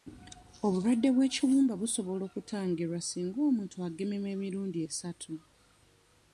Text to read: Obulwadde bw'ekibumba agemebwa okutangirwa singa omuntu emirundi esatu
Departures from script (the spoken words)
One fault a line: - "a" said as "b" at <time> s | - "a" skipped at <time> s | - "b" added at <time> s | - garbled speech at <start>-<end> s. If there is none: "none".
- "agemebwa" said as "busobola" at 1.8 s
- "agemebwa" added at 3.9 s